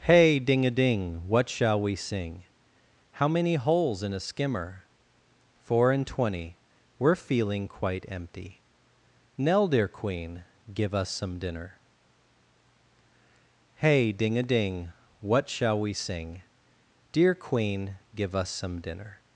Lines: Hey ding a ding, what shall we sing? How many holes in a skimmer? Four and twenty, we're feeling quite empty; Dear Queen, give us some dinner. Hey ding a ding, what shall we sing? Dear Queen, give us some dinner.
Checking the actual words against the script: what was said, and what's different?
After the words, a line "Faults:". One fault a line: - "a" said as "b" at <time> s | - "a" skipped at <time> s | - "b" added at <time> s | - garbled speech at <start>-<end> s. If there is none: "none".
Hey ding a ding, what shall we sing? How many holes in a skimmer? Four and twenty, we're feeling quite empty; nell Dear Queen, give us some dinner. Hey ding a ding, what shall we sing? Dear Queen, give us some dinner.
Faults:
- "nell" added at 9.4 s